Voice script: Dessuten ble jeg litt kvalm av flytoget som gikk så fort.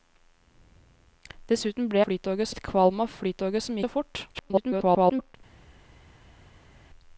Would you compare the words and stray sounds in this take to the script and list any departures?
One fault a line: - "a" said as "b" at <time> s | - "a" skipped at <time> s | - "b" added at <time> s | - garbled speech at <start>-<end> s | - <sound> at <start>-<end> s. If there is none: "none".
- "jeg" said as "flytoget" at 2.0 s
- "gikk" skipped at 3.8 s
- garbled speech at 4.3-5.4 s